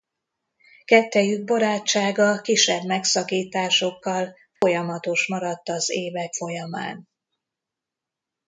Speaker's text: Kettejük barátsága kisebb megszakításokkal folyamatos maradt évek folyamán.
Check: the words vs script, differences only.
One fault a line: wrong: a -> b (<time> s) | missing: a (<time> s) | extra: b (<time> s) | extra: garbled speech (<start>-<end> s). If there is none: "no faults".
extra: az (5.7 s)